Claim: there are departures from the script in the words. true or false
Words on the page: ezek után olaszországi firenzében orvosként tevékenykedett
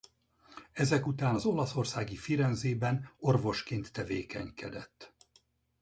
true